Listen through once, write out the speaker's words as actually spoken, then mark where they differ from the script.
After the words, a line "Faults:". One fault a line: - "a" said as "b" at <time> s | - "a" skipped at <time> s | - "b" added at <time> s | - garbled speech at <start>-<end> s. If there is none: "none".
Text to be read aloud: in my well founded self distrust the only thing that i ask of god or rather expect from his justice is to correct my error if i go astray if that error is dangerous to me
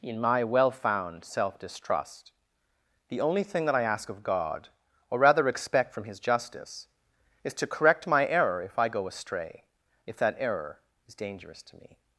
in my well found self distrust the only thing that i ask of god or rather expect from his justice is to correct my error if i go astray if that error is dangerous to me
Faults:
- "founded" said as "found" at 0.7 s